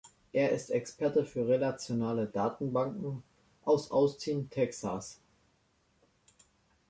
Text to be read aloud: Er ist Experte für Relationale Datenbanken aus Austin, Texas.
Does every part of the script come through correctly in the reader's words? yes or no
yes